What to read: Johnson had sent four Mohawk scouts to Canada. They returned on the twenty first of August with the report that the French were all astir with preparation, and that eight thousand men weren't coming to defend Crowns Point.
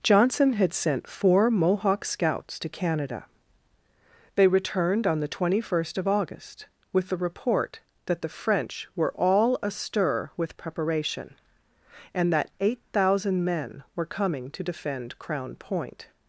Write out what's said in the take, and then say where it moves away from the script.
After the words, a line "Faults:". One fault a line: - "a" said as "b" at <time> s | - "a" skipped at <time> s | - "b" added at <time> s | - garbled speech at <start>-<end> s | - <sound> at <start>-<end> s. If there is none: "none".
Johnson had sent four Mohawk scouts to Canada. They returned on the twenty first of August with the report that the French were all astir with preparation, and that eight thousand men were coming to defend Crown Point.
Faults:
- "weren't" said as "were" at 13.9 s
- "Crowns" said as "Crown" at 15.2 s